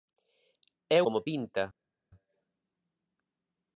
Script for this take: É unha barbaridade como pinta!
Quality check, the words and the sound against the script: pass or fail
fail